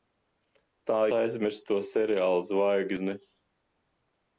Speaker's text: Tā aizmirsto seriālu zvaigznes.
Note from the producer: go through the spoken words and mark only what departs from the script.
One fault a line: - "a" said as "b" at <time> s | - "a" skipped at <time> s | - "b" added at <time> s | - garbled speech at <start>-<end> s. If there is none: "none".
none